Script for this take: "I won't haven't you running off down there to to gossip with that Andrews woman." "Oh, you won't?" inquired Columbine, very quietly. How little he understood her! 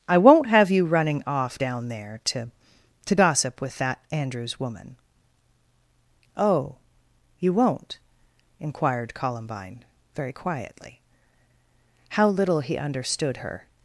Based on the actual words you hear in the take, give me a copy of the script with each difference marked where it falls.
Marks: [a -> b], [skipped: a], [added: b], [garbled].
"I won't [haven't -> have] you running off down there to to gossip with that Andrews woman." "Oh, you won't?" inquired Columbine, very quietly. How little he understood her!